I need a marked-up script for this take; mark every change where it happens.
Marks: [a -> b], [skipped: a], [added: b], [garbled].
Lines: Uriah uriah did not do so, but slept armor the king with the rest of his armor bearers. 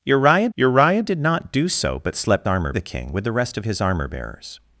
Uriah uriah did not do so, but slept armor the king with the rest of his armor bearers.